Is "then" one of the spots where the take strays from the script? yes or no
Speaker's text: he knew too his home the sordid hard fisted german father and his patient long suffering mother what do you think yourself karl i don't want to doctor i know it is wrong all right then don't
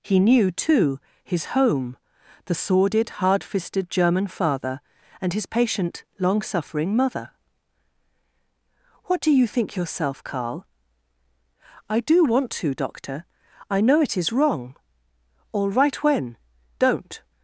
yes